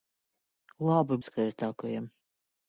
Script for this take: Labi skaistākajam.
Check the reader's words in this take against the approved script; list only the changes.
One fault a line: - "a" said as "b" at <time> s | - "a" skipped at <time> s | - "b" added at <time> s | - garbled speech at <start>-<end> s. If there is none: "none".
none